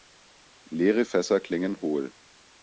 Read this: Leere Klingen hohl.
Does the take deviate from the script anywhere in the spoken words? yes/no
yes